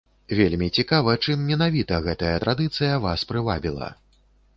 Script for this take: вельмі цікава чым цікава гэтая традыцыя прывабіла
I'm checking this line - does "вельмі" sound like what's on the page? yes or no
yes